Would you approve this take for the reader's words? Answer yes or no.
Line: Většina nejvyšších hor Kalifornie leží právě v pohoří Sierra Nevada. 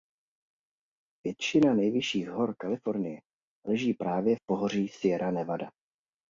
yes